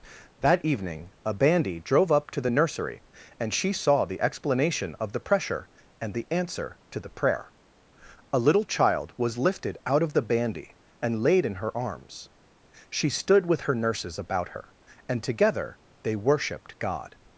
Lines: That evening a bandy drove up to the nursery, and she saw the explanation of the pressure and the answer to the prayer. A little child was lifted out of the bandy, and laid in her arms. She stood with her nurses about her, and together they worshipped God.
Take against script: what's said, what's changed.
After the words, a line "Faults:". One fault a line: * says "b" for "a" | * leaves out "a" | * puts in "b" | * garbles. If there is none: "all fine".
That evening a bandy drove up to the nursery, and she saw the explanation of the pressure and the answer to the prayer. A little child was lifted out of the bandy, and laid in her arms. She stood with her nurses about her, and together they worshipped God.
Faults:
all fine